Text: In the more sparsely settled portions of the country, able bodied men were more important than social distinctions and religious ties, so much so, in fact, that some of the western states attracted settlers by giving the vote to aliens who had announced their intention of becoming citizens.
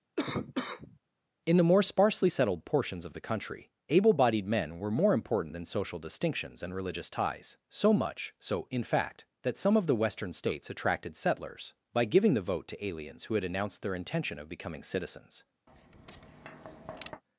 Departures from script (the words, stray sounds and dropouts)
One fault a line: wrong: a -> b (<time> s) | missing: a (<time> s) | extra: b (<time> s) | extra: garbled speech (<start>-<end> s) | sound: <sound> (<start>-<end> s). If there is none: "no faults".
sound: cough (0.2-1.0 s)
sound: tap (15.7-17.2 s)